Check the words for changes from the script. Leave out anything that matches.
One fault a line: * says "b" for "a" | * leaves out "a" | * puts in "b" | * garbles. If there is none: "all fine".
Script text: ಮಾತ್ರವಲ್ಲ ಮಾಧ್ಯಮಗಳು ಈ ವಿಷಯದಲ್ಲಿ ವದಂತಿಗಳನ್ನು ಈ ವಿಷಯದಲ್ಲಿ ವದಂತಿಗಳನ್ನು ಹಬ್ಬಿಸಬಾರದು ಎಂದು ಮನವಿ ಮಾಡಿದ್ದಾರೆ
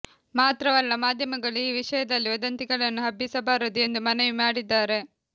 * leaves out "ಈ ವಿಷಯದಲ್ಲಿ ವದಂತಿಗಳನ್ನು"